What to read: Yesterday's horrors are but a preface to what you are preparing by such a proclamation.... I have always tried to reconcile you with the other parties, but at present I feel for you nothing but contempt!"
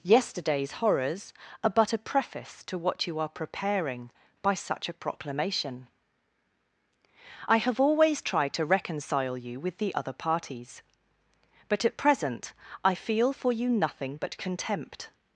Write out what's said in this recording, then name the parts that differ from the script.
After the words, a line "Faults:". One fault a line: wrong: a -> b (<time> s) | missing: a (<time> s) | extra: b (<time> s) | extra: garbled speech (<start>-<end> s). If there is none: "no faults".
Yesterday's horrors are but a preface to what you are preparing by such a proclamation.... I have always tried to reconcile you with the other parties, but at present I feel for you nothing but contempt!"
Faults:
no faults